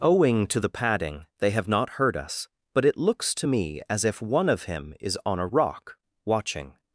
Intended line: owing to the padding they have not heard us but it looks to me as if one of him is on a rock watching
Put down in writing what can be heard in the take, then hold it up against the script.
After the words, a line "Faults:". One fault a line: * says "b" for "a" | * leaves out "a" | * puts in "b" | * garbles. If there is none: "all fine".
owing to the padding they have not heard us but it looks to me as if one of him is on a rock watching
Faults:
all fine